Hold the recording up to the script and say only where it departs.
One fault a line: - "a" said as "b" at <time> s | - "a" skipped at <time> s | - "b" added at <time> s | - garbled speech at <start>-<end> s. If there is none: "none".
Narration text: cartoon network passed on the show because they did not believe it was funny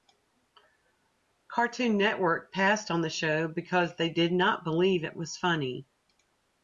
none